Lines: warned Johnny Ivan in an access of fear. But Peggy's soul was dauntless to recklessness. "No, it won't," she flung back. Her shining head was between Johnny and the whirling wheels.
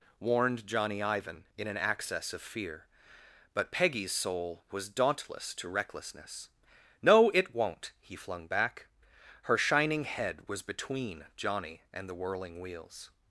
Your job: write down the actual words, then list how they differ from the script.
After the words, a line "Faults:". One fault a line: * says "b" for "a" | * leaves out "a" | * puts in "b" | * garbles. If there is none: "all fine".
warned Johnny Ivan in an access of fear. But Peggy's soul was dauntless to recklessness. "No, it won't," he flung back. Her shining head was between Johnny and the whirling wheels.
Faults:
* says "he" for "she"